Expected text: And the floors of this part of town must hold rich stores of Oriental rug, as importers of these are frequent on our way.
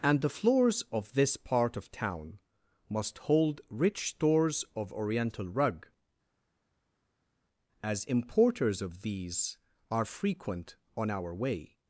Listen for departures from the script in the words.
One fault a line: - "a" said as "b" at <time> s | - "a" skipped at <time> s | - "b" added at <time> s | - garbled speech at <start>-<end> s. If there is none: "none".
none